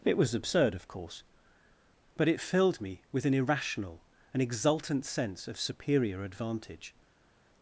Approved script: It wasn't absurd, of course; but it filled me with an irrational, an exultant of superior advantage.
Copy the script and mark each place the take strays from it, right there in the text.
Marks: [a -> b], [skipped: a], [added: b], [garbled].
It [wasn't -> was] absurd, of course; but it filled me with an irrational, an exultant [added: sense] of superior advantage.